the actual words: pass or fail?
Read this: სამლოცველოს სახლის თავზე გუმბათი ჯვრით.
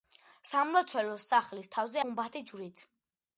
pass